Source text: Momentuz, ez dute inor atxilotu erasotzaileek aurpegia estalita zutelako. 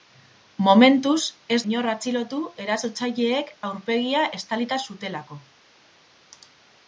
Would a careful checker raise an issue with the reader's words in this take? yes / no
yes